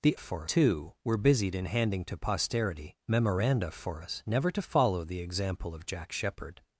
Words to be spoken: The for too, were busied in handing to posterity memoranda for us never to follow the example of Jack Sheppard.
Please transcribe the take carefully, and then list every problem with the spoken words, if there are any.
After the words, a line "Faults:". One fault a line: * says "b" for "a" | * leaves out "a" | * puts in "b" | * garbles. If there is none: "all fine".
The for too, were busied in handing to posterity memoranda for us never to follow the example of Jack Sheppard.
Faults:
all fine